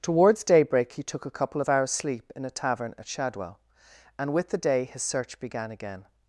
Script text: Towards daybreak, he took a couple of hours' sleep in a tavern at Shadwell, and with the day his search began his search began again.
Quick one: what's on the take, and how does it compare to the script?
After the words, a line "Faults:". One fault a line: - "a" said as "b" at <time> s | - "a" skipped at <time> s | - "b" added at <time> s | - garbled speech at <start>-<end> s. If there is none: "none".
Towards daybreak, he took a couple of hours' sleep in a tavern at Shadwell, and with the day his search began again.
Faults:
- "his search began" skipped at 5.7 s